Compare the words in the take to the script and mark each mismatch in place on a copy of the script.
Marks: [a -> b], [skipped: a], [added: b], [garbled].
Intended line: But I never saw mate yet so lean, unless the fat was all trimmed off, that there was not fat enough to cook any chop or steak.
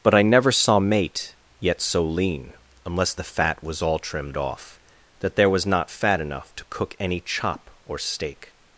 But I never saw mate yet so lean, unless the fat was all trimmed off, that there was not fat enough to cook any chop or steak.